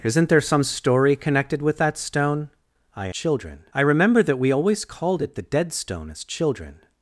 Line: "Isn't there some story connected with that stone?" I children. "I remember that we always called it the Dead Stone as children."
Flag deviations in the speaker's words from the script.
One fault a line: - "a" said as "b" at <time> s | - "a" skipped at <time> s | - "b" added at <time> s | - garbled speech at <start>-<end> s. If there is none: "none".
none